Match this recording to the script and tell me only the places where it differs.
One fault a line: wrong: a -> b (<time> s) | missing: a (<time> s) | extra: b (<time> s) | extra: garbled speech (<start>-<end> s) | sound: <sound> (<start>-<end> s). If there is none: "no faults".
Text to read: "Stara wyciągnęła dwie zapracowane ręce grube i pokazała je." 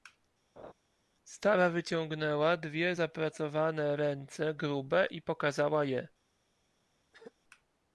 sound: laugh (0.6-0.7 s)
sound: throat clearing (7.1-7.3 s)